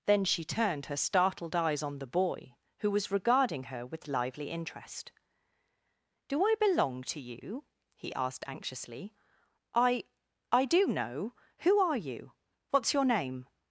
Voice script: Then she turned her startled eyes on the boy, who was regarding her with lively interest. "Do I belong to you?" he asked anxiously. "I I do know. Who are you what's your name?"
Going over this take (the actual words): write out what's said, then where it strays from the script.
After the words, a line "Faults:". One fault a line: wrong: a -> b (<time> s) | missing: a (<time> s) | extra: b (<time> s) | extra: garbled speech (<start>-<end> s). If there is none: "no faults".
Then she turned her startled eyes on the boy, who was regarding her with lively interest. "Do I belong to you?" he asked anxiously. "I I do know. Who are you what's your name?"
Faults:
no faults